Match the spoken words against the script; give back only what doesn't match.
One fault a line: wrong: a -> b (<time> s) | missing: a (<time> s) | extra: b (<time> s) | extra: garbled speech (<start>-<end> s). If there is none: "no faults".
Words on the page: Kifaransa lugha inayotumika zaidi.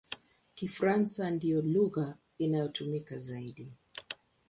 extra: ndiyo (1.3 s)